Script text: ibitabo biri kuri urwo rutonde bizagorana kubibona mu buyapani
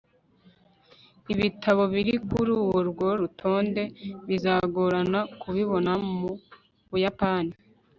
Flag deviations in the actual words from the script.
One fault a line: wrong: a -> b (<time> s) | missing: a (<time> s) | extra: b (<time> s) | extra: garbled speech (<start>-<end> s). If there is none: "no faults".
no faults